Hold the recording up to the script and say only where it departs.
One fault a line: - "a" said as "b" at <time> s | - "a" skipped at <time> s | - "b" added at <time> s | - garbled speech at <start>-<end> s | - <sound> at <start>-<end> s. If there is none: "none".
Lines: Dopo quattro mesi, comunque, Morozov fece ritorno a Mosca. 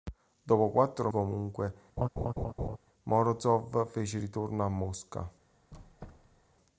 - "mesi" skipped at 1.1 s
- laugh at 2.0-2.8 s
- squeak at 5.7-6.5 s